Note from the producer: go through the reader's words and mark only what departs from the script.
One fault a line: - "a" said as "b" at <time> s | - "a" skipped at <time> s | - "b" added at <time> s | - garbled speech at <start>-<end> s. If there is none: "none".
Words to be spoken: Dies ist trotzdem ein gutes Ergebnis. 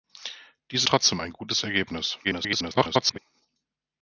- "ist" skipped at 0.8 s
- garbled speech at 2.2-3.2 s